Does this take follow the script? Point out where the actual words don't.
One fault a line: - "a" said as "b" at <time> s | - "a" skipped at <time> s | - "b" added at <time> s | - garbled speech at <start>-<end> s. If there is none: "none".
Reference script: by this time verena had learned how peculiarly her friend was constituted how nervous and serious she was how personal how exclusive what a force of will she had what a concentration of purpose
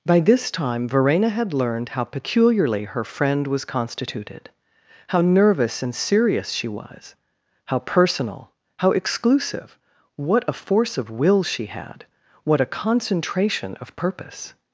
none